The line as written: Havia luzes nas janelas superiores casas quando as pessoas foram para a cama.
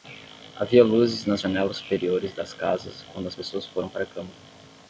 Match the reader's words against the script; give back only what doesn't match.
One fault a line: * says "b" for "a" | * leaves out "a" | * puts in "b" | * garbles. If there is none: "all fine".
* puts in "das"